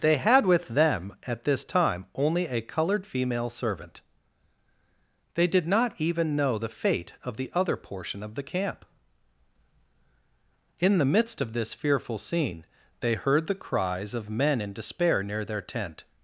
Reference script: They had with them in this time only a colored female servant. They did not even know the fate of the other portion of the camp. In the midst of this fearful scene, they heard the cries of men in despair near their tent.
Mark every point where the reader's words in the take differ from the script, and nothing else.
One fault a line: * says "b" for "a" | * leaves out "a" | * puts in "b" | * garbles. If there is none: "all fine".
* says "at" for "in"